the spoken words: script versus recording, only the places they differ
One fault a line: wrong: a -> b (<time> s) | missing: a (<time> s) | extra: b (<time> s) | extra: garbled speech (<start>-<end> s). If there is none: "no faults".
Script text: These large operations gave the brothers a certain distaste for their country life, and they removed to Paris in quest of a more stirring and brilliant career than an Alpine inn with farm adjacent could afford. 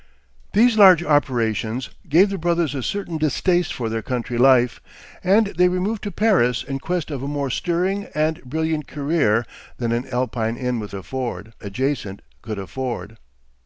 wrong: farm -> afford (10.9 s)